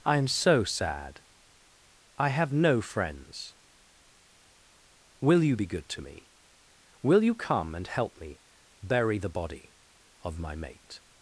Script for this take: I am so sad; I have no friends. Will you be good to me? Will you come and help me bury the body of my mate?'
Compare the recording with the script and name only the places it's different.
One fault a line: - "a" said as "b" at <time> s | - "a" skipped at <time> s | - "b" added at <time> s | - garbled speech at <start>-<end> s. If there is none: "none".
none